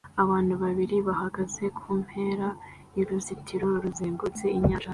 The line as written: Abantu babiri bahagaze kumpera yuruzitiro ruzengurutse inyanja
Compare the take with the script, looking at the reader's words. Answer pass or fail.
pass